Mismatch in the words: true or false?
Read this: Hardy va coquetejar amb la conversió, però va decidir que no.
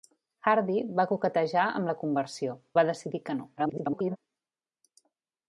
true